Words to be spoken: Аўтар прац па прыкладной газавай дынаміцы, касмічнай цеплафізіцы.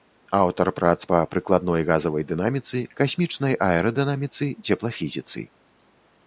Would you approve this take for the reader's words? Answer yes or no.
no